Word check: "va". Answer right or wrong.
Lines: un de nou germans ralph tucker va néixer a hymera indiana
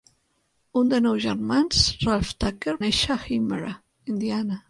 wrong